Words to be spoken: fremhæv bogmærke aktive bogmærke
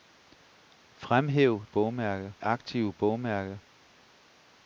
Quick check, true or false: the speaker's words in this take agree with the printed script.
true